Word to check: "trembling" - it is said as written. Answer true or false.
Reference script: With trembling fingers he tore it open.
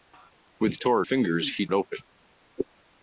false